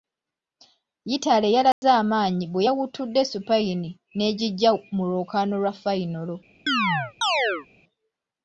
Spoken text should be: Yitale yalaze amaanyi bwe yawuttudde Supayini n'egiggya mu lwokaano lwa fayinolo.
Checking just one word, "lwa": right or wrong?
right